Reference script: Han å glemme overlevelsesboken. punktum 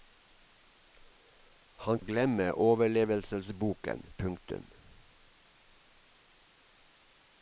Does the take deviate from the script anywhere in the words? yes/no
no